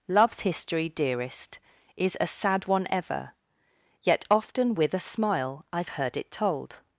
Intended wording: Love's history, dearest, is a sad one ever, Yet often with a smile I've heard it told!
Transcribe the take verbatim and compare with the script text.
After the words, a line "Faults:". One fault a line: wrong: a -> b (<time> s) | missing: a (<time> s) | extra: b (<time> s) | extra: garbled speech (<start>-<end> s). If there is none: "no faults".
Love's history, dearest, is a sad one ever, Yet often with a smile I've heard it told!
Faults:
no faults